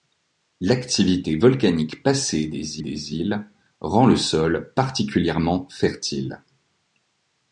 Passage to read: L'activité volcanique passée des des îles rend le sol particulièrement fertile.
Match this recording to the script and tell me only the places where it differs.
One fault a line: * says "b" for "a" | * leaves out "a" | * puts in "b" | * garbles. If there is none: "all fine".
all fine